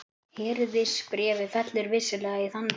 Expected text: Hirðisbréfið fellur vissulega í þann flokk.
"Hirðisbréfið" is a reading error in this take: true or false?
false